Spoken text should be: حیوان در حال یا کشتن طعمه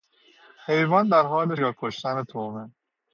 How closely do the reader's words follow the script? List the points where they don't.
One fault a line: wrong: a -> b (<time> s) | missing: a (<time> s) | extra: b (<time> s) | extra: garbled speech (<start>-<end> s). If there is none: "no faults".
no faults